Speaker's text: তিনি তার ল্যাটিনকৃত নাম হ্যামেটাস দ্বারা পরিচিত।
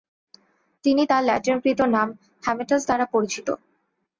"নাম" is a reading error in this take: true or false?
false